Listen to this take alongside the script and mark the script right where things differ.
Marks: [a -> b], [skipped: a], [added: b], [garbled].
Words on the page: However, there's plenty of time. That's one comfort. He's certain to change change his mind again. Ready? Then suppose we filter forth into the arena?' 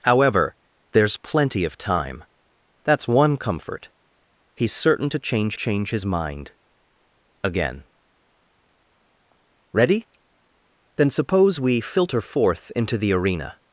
However, there's plenty of time. That's one comfort. He's certain to change change his mind again. Ready? Then suppose we filter forth into the arena?'